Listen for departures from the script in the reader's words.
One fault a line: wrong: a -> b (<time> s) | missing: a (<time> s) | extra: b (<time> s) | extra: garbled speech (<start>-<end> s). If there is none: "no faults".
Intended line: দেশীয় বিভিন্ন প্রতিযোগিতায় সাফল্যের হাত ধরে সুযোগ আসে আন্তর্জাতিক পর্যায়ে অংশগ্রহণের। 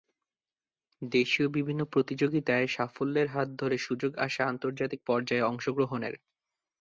no faults